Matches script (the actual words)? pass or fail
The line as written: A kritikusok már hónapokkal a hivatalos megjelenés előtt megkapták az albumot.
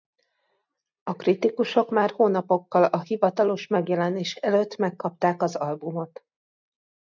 pass